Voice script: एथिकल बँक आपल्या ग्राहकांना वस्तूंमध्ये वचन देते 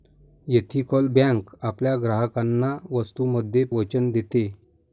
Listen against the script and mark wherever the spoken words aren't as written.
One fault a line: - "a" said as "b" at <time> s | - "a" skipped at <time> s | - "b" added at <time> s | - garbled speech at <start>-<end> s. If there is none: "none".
none